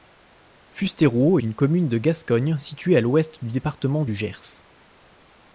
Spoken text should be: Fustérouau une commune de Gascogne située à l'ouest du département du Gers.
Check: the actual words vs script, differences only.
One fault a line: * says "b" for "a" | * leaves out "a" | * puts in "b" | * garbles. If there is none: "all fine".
all fine